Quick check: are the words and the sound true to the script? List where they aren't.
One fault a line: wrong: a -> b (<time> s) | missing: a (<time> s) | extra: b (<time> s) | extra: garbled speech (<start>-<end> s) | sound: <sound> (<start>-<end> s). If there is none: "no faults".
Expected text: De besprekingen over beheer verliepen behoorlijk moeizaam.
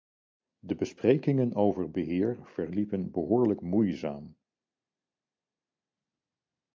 no faults